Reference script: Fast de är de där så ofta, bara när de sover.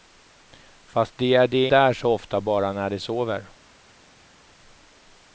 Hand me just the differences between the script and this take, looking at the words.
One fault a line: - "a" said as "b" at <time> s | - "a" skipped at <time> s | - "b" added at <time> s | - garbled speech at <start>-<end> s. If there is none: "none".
none